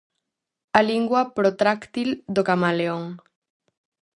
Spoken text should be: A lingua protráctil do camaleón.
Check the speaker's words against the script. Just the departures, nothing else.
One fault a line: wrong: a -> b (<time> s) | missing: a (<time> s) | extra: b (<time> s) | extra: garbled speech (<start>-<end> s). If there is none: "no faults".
no faults